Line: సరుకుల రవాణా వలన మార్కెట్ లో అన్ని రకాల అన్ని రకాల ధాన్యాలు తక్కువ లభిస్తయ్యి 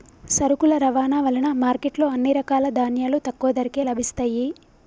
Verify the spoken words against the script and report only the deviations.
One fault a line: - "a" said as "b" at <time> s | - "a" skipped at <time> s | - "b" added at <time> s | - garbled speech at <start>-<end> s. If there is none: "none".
- "అన్ని రకాల" skipped at 2.7 s
- "ధరకే" added at 3.6 s